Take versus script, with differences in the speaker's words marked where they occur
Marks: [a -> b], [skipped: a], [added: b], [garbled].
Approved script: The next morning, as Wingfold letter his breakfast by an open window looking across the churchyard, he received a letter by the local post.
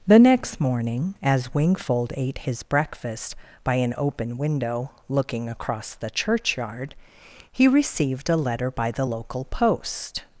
The next morning, as Wingfold [letter -> ate] his breakfast by an open window looking across the churchyard, he received a letter by the local post.